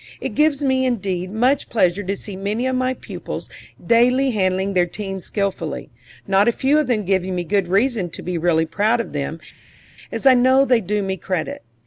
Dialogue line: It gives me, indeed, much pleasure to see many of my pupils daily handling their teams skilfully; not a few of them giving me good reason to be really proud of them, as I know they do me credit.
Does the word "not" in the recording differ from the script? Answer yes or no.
no